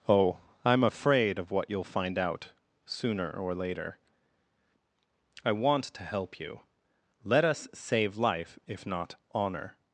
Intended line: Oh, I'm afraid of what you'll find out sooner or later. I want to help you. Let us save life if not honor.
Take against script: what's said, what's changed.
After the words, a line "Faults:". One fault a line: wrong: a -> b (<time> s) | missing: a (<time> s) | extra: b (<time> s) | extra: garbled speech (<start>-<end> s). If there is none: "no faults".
Oh, I'm afraid of what you'll find out sooner or later. I want to help you. Let us save life if not honor.
Faults:
no faults